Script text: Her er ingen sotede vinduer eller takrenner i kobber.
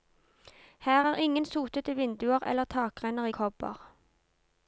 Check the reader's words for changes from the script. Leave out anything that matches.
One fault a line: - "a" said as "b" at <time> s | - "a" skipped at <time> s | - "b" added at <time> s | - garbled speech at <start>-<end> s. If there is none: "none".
none